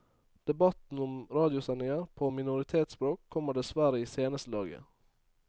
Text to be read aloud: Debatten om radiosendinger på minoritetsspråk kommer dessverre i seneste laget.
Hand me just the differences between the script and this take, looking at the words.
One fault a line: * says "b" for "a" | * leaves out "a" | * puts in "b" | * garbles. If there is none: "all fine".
all fine